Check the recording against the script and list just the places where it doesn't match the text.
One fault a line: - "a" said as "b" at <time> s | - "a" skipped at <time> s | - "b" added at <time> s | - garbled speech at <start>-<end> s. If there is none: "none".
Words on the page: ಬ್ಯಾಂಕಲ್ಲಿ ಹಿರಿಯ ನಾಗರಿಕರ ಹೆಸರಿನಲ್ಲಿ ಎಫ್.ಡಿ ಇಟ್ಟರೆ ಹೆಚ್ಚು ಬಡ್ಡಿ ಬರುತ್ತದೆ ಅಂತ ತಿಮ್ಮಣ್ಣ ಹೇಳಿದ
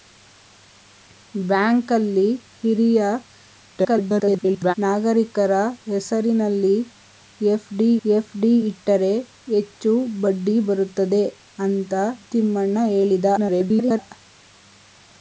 - garbled speech at 3.7-4.7 s
- "ಎಫ್.ಡಿ" added at 8.0 s
- garbled speech at 13.4-14.0 s